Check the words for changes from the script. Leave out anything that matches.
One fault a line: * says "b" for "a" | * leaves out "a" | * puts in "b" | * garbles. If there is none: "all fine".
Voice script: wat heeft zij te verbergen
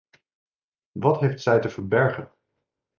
all fine